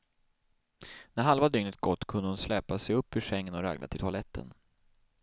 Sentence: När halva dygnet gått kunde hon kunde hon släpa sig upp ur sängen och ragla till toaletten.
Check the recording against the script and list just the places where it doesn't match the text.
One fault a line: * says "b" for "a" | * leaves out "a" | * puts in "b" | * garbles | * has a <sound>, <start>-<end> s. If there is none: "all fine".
* leaves out "kunde hon"